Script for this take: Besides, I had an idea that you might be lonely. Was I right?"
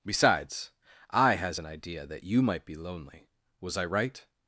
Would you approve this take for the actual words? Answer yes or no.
no